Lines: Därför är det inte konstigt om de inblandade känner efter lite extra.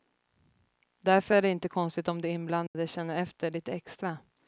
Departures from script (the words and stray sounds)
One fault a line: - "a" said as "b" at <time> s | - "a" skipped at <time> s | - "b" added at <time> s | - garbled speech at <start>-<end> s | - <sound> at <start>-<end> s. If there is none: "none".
- dropout at 2.7-2.7 s